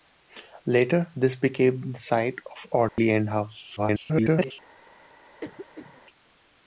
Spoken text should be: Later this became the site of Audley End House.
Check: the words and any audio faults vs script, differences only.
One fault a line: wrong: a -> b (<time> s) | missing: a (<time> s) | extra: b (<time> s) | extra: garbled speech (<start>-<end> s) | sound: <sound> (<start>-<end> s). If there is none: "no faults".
sound: dropout (2.9-3.0 s)
extra: garbled speech (3.8-4.5 s)
sound: cough (5.4-6.0 s)